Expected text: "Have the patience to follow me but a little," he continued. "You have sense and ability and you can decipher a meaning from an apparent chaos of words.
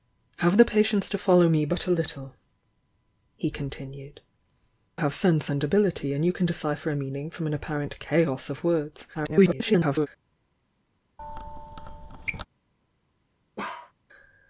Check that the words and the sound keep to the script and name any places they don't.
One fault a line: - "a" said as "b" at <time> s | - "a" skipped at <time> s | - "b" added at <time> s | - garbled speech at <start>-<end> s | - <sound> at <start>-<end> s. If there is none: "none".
- "You" skipped at 4.2 s
- garbled speech at 9.1-10.1 s
- squeak at 11.2-12.5 s
- bark at 13.6-13.9 s